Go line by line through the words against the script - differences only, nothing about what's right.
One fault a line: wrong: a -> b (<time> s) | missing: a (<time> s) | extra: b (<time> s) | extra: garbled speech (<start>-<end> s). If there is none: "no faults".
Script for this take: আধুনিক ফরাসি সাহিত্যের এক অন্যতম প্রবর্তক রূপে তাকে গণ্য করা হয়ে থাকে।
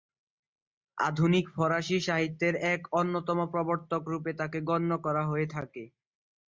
no faults